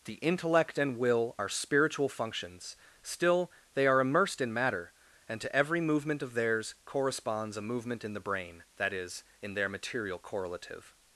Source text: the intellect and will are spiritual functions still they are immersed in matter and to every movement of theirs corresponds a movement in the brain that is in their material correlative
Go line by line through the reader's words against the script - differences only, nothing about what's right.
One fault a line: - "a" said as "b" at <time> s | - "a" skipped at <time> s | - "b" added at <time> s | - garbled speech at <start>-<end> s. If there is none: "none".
none